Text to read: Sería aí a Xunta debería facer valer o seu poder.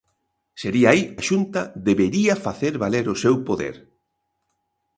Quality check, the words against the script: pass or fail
pass